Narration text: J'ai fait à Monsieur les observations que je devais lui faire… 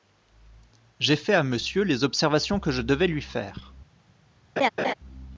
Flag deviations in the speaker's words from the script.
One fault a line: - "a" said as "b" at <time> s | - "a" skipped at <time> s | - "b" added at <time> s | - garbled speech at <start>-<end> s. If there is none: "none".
none